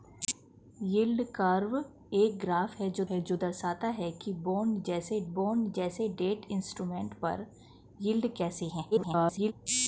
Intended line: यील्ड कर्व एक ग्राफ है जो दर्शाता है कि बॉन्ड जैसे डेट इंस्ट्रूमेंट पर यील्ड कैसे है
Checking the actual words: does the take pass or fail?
fail